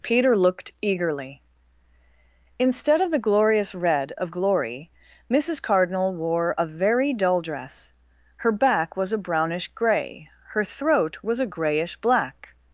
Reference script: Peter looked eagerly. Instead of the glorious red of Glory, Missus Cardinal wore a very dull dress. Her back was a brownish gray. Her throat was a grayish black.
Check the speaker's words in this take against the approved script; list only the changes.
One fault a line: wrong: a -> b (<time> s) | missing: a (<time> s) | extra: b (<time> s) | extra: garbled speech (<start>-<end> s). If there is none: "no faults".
no faults